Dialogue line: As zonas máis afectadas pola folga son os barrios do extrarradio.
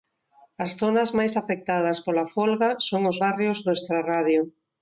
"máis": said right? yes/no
yes